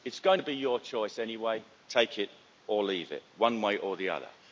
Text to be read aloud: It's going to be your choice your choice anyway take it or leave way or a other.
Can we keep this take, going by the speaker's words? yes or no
no